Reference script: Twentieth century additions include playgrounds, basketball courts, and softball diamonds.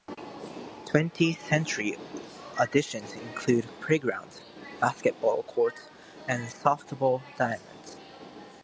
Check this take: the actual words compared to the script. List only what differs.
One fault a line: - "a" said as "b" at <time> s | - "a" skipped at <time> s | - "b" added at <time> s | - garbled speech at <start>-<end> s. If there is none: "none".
none